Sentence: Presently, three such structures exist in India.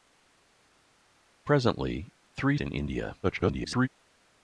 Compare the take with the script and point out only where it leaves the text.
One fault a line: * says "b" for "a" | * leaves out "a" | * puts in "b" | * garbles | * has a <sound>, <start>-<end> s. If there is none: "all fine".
* leaves out "such structures exist"
* garbles